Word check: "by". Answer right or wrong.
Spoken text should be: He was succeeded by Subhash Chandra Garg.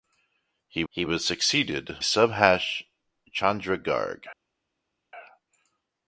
wrong